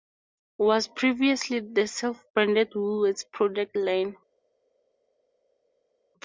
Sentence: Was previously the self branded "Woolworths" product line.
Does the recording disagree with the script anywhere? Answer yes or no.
no